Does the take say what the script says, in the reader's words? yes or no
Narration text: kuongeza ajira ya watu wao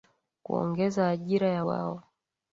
no